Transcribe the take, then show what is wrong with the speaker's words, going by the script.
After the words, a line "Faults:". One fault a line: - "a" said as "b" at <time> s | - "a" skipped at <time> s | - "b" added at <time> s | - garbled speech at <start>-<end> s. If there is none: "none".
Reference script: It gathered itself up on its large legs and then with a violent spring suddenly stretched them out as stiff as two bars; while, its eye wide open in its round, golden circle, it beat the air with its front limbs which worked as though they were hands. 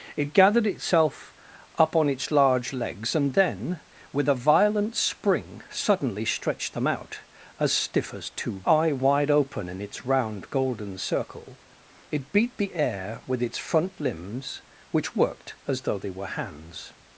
It gathered itself up on its large legs and then with a violent spring suddenly stretched them out as stiff as two eye wide open in its round, golden circle, it beat the air with its front limbs which worked as though they were hands.
Faults:
- "bars while its" skipped at 8.6 s